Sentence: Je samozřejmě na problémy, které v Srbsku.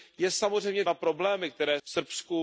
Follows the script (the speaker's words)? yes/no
yes